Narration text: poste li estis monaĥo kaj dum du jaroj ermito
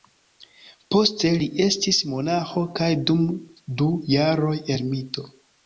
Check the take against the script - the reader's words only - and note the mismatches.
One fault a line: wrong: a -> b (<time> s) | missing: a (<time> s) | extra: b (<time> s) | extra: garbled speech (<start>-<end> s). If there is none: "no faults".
no faults